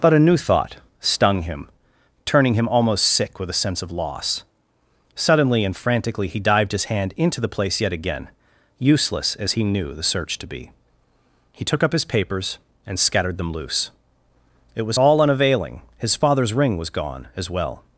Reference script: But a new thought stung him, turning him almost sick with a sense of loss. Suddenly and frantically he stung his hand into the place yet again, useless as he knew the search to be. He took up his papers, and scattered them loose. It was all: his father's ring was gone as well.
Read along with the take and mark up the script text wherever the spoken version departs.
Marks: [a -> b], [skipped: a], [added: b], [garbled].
But a new thought stung him, turning him almost sick with a sense of loss. Suddenly and frantically he [stung -> dived] his hand into the place yet again, useless as he knew the search to be. He took up his papers, and scattered them loose. It was all: [added: unavailing] his father's ring was gone as well.